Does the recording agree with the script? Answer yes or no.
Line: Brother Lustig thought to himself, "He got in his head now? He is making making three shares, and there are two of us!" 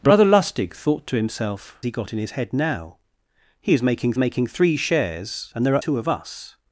yes